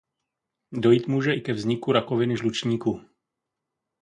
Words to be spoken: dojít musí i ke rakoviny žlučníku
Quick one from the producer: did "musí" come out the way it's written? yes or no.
no